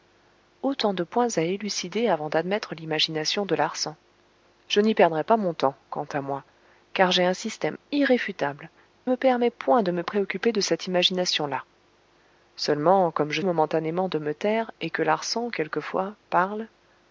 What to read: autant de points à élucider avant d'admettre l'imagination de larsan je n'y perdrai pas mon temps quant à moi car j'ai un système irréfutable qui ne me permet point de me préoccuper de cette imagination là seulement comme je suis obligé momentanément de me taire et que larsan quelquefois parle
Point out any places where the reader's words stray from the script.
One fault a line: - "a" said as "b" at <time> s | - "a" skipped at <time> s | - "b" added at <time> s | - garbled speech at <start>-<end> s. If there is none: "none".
- "qui ne" skipped at 8.7 s
- "suis obligé" skipped at 13.4 s